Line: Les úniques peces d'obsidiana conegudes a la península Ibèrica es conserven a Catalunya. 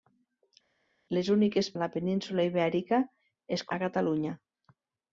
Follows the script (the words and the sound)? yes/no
no